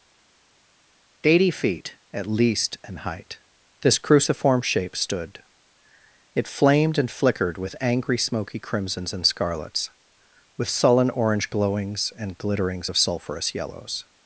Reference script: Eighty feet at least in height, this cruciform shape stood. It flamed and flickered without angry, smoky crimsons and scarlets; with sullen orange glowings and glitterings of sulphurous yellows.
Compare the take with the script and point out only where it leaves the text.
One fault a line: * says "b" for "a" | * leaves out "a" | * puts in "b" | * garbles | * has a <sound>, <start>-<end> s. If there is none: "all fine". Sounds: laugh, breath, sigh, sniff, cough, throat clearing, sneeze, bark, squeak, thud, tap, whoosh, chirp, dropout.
* says "with" for "without"